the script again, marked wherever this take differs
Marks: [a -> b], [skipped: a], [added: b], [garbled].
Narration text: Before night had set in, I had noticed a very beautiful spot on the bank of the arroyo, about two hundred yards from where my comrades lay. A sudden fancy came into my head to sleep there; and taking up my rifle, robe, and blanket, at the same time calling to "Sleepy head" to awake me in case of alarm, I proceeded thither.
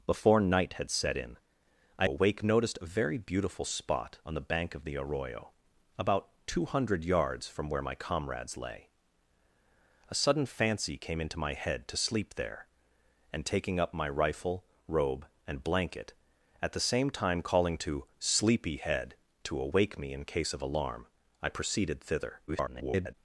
Before night had set in, I [had -> awake] noticed a very beautiful spot on the bank of the arroyo, about two hundred yards from where my comrades lay. A sudden fancy came into my head to sleep there; and taking up my rifle, robe, and blanket, at the same time calling to "Sleepy head" to awake me in case of alarm, I proceeded thither. [garbled]